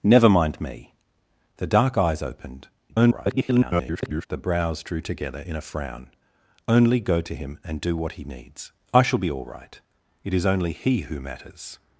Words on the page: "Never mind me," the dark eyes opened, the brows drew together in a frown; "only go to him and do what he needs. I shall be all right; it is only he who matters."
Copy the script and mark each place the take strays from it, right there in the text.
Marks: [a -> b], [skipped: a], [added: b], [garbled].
"Never mind me," the dark eyes opened, [garbled] the brows drew together in a frown; "only go to him and do what he needs. I shall be all right; it is only he who matters."